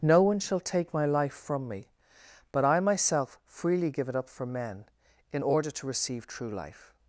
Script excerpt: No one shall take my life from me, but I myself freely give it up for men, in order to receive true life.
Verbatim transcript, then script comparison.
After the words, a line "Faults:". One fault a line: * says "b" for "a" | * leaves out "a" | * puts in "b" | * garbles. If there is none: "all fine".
No one shall take my life from me, but I myself freely give it up for men, in order to receive true life.
Faults:
all fine